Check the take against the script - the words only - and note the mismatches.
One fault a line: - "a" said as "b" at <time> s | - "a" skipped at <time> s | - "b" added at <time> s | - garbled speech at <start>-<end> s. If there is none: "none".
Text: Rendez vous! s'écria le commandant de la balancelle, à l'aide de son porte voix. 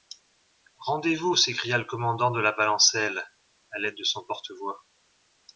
none